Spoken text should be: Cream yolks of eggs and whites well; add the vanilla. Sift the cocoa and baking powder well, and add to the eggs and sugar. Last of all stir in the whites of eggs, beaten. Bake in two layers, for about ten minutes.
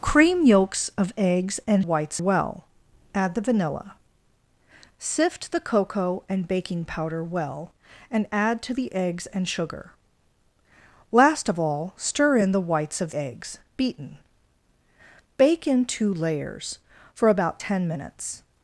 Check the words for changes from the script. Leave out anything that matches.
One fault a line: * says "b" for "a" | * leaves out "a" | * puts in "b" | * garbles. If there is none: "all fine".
all fine